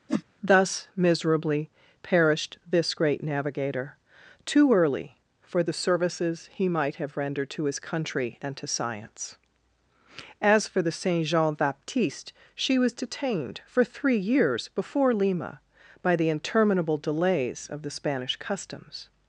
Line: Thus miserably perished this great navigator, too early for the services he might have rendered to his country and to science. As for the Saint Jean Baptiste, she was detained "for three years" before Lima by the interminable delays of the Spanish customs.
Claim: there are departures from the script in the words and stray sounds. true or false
true